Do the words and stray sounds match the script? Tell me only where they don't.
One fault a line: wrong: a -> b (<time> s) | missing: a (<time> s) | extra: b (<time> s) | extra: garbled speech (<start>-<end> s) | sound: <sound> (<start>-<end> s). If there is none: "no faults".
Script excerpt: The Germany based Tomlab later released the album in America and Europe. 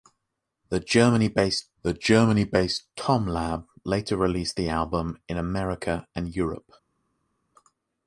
extra: the Germany based (1.8 s)